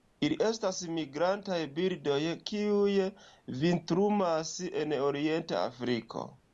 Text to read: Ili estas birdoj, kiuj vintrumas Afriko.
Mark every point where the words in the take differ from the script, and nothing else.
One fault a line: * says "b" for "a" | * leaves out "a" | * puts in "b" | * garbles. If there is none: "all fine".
* puts in "migrantaj"
* puts in "en orienta"